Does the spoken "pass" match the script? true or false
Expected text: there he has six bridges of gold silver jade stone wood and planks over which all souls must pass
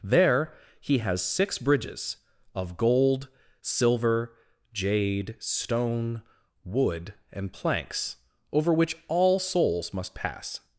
true